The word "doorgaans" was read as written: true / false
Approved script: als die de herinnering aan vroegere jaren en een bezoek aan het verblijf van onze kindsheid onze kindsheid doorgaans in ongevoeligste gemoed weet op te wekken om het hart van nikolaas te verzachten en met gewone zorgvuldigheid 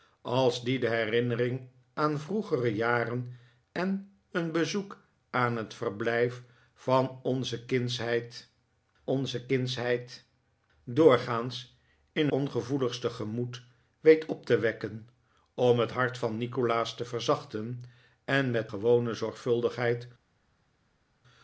true